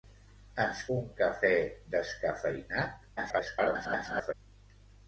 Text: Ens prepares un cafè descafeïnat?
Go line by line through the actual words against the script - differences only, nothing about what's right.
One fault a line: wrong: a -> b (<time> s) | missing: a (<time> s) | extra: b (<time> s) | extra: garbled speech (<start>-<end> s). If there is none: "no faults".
missing: prepares (0.8 s)
extra: garbled speech (3.2-4.3 s)